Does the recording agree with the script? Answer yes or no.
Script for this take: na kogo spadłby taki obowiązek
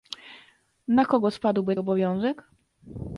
no